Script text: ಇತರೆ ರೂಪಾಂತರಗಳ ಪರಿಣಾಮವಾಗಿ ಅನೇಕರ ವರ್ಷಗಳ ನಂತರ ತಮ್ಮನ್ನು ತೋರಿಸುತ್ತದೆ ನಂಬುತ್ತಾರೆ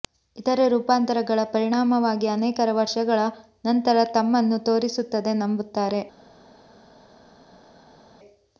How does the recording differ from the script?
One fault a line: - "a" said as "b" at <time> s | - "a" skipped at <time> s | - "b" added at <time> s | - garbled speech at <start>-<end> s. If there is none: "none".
none